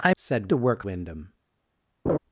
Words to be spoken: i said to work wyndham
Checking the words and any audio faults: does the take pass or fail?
fail